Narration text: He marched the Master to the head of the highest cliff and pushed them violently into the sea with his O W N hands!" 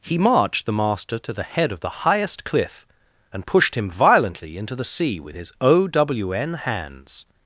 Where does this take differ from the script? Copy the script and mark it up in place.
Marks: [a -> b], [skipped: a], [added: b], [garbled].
He marched the Master to the head of the highest cliff and pushed [them -> him] violently into the sea with his O W N hands!"